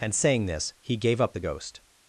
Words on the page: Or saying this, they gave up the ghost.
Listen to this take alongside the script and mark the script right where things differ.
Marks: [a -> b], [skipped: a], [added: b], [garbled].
[Or -> And] saying this, [they -> he] gave up the ghost.